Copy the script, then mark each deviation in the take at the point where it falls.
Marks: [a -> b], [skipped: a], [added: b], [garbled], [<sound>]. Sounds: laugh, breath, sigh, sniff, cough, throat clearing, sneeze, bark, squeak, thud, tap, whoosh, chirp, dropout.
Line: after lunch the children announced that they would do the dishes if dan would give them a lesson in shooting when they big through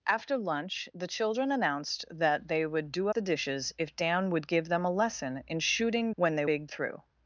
after lunch the children announced that they would do the dishes if dan would give them a lesson in shooting when they big through